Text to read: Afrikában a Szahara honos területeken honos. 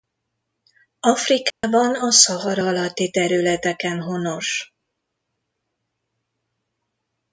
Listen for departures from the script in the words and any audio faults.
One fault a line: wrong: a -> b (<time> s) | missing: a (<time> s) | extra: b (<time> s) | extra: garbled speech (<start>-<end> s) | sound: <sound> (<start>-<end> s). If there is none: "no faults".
sound: dropout (1.5-1.6 s)
wrong: honos -> alatti (2.6 s)